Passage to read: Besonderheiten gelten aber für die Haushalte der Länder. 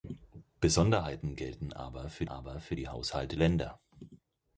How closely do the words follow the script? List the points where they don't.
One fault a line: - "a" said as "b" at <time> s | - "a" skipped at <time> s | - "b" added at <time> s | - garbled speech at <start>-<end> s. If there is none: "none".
- "aber für" added at 2.2 s
- "der" skipped at 3.4 s